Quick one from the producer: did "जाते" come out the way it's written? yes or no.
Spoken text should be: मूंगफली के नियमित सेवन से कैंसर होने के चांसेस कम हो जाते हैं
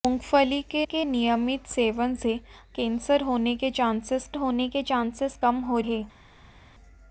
no